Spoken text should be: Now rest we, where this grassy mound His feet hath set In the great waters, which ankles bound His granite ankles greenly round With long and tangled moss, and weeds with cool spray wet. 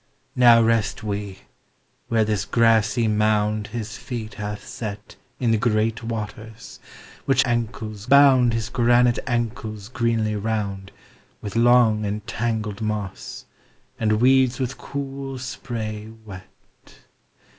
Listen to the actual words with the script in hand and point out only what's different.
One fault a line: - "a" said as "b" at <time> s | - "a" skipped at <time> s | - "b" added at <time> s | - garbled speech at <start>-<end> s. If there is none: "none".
none